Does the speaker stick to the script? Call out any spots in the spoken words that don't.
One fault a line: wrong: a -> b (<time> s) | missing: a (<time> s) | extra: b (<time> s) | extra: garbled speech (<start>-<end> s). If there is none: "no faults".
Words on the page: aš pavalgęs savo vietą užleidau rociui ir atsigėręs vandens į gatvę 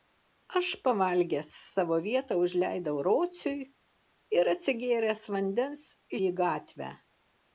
no faults